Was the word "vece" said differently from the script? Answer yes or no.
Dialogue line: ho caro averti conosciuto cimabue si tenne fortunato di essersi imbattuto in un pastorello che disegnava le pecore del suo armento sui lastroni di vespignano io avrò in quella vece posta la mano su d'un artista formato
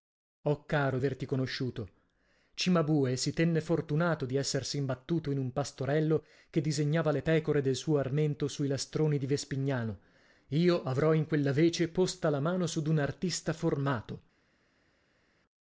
no